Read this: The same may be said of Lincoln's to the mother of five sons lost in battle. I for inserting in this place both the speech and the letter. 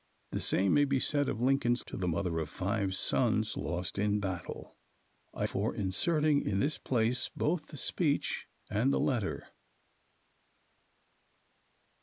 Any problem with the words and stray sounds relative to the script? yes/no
no